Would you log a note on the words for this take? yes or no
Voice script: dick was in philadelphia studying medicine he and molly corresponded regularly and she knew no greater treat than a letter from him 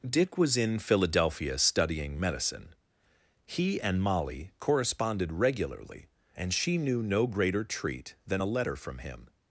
no